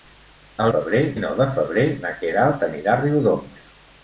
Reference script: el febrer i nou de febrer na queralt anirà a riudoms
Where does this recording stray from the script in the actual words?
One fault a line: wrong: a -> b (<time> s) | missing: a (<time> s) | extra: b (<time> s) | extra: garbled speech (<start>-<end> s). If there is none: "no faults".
no faults